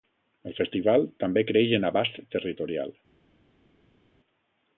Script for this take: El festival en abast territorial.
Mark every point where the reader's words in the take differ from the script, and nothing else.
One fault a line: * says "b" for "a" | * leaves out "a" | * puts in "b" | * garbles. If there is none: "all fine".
* puts in "també creix"